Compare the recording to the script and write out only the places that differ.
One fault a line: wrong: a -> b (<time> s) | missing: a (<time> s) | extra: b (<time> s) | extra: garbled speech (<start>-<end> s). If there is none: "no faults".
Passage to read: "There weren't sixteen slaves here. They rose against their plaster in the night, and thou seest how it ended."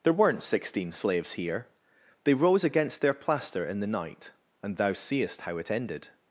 no faults